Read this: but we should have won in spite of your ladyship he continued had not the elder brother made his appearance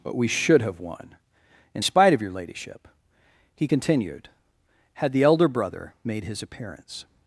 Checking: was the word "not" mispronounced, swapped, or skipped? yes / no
yes